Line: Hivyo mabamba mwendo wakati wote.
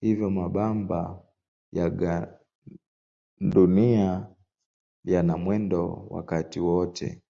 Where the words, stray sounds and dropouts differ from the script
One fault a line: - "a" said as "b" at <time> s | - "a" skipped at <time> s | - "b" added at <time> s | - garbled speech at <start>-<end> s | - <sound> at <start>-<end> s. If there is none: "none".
- "ya gandunia yana" added at 1.7 s